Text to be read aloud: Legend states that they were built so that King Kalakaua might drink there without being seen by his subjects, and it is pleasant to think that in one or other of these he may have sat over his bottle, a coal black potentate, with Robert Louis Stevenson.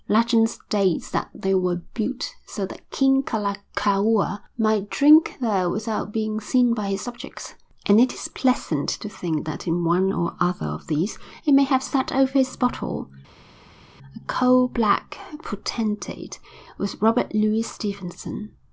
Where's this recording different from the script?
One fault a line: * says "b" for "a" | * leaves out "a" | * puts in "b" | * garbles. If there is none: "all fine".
all fine